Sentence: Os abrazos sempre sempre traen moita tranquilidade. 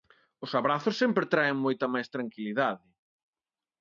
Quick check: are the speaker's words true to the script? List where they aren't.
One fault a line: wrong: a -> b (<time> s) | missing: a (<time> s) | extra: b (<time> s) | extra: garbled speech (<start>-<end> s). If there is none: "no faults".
missing: sempre (1.3 s)
extra: máis (1.9 s)